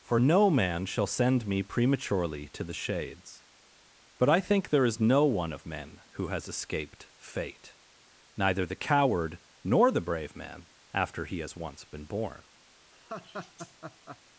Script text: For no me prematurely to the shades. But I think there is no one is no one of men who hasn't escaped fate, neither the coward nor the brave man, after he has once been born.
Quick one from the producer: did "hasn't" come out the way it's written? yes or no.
no